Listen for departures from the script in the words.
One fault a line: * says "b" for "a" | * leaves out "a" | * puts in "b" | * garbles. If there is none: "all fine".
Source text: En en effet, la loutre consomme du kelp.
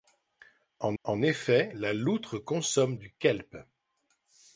all fine